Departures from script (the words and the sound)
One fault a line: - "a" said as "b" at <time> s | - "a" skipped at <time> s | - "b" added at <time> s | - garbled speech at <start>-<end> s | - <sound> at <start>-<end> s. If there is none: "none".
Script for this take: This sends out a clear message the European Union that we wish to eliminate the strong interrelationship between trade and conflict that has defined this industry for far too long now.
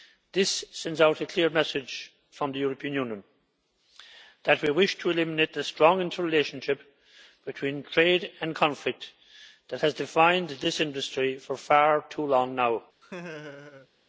- "from" added at 2.3 s
- laugh at 13.0-13.9 s